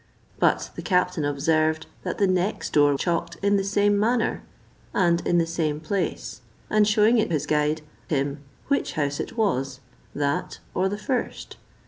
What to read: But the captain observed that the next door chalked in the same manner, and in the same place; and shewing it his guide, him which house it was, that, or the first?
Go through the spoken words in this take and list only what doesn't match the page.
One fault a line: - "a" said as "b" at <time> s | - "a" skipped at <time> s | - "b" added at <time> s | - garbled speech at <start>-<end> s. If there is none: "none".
none